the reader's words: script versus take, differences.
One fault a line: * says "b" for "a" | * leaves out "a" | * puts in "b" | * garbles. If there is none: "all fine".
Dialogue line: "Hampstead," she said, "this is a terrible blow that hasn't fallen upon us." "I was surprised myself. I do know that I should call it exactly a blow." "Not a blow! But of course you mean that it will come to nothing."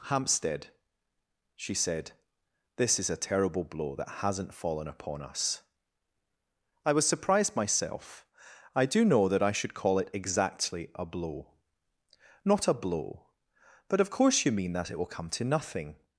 all fine